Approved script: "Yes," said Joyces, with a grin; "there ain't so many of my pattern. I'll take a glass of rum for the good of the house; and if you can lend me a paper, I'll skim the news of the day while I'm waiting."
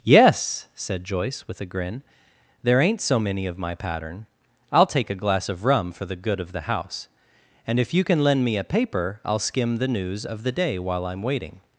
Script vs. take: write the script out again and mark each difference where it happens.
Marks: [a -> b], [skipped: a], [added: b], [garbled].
"Yes," said [Joyces, -> Joyce] with a grin; "there ain't so many of my pattern. I'll take a glass of rum for the good of the house; and if you can lend me a paper, I'll skim the news of the day while I'm waiting."